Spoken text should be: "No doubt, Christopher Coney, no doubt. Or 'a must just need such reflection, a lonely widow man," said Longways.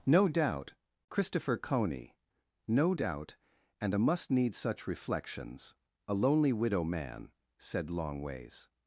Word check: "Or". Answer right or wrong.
wrong